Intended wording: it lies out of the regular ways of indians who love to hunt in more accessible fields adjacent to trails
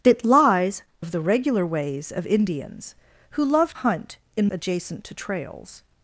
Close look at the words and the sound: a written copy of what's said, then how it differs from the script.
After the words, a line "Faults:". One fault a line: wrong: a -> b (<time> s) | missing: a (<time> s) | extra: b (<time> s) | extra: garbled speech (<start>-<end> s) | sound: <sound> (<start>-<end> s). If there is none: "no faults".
it lies of the regular ways of indians who love hunt in adjacent to trails
Faults:
missing: out (0.8 s)
missing: to (3.7 s)
missing: more accessible fields (4.5 s)